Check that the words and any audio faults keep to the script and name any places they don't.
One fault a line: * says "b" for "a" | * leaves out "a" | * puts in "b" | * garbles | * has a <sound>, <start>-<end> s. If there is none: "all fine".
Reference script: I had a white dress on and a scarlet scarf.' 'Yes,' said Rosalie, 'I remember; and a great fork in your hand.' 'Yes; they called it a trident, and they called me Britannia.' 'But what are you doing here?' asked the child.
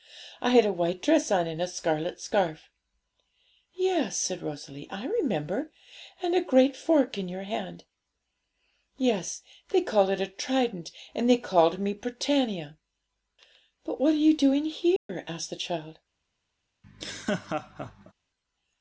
* has a dropout, 15.0-15.1 s
* has a laugh, 16.8-18.1 s